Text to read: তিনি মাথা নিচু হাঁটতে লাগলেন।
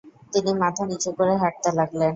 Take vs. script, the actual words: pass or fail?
fail